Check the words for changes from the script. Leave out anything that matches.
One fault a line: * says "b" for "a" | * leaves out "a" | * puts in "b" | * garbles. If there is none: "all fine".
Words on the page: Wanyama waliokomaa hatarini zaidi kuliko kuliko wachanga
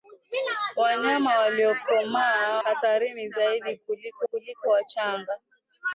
all fine